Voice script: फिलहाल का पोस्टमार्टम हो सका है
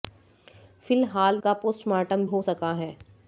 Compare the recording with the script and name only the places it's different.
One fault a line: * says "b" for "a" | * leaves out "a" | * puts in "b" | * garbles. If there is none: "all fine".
all fine